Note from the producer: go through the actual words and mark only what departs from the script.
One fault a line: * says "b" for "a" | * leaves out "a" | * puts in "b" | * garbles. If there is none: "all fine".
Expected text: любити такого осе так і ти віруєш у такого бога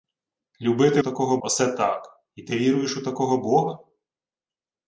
all fine